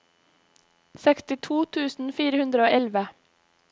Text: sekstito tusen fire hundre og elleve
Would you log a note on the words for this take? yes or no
no